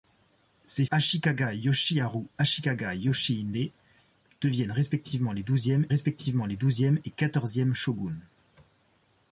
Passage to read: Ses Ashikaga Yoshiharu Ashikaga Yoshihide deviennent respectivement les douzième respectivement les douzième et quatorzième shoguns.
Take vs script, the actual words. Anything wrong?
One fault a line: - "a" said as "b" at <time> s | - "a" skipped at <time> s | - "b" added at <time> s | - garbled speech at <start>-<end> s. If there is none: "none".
none